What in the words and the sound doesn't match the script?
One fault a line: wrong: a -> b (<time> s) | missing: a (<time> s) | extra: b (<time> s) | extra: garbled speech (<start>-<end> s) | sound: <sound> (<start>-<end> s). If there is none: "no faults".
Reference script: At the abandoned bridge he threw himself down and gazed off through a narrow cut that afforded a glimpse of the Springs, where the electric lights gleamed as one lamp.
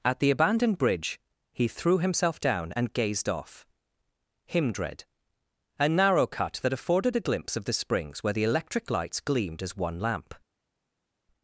wrong: through -> himdred (4.5 s)